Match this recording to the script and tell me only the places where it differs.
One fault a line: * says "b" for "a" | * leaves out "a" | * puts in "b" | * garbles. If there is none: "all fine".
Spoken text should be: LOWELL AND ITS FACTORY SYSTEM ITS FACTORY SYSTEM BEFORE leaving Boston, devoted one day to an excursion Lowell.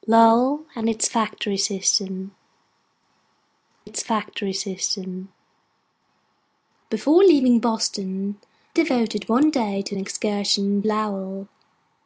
all fine